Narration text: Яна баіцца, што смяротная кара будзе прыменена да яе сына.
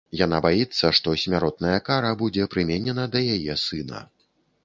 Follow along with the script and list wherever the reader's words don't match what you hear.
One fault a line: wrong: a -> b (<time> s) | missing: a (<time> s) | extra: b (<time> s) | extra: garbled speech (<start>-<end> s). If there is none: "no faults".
no faults